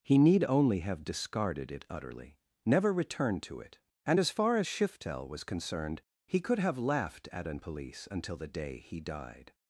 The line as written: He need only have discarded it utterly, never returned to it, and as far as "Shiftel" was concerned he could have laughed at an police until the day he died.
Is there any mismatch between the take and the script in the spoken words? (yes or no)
no